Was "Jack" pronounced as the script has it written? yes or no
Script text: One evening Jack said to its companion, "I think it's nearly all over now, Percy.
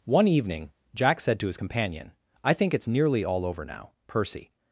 yes